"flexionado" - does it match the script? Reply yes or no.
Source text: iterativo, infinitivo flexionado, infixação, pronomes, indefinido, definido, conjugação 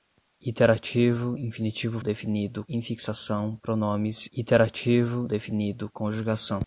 no